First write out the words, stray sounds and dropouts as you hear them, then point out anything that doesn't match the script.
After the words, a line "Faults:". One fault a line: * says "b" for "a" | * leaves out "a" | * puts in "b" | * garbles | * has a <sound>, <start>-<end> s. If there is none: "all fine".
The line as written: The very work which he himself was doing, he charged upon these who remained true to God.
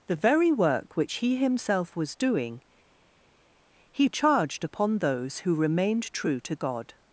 The very work which he himself was doing, he charged upon those who remained true to God.
Faults:
* says "those" for "these"